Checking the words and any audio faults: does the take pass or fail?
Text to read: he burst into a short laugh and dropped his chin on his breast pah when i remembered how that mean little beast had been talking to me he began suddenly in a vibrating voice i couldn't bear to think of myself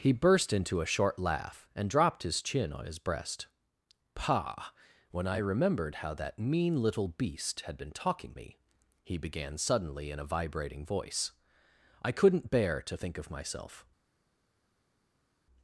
fail